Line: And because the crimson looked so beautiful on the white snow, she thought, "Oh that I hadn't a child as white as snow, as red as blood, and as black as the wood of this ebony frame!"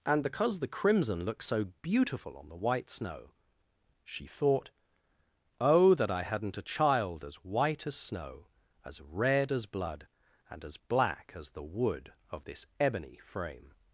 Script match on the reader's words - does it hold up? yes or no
yes